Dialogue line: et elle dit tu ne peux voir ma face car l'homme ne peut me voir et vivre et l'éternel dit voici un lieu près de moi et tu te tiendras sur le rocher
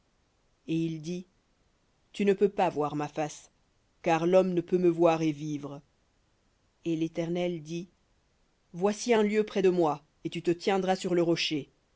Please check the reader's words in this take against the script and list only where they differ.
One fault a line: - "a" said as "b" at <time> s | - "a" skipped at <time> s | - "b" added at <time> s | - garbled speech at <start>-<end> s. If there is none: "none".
- "elle" said as "il" at 0.8 s
- "pas" added at 2.5 s